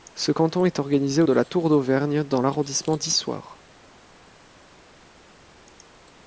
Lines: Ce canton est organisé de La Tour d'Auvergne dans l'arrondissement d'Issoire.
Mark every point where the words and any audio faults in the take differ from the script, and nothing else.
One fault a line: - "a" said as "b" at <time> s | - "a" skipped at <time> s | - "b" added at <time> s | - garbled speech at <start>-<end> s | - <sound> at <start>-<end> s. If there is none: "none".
none